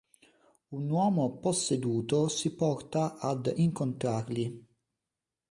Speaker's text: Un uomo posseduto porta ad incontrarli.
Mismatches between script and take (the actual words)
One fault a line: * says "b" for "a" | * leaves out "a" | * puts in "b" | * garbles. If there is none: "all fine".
* puts in "si"